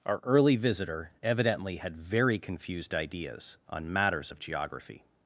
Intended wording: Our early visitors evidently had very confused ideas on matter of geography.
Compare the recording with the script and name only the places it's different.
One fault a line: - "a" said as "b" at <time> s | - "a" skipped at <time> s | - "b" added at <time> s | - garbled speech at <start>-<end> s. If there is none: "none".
- "visitors" said as "visitor" at 0.5 s
- "matter" said as "matters" at 3.9 s